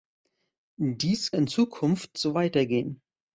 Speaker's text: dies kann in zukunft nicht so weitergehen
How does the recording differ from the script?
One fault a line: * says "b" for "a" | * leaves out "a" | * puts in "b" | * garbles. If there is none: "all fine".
* leaves out "kann"
* leaves out "nicht"